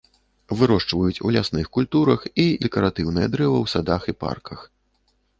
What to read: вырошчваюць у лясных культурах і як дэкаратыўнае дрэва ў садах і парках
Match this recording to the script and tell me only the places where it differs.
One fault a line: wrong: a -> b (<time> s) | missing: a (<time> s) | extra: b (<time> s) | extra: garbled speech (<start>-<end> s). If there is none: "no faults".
missing: як (2.5 s)